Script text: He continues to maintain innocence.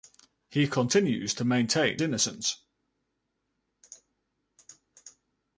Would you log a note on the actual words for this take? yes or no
no